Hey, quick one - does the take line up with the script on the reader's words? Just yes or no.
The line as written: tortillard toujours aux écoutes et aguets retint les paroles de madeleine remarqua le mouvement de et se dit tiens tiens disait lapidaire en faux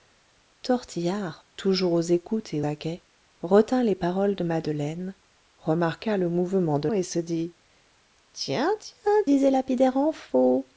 yes